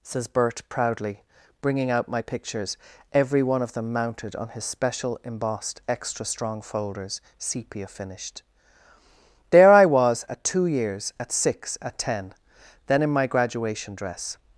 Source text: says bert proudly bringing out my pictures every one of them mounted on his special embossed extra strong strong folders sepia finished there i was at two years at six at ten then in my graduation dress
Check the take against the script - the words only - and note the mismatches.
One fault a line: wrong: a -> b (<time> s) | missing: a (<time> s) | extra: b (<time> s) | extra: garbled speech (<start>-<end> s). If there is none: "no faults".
missing: strong (6.6 s)